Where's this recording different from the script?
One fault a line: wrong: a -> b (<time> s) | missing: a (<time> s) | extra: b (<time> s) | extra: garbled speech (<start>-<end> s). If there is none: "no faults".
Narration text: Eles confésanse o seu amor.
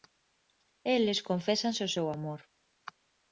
no faults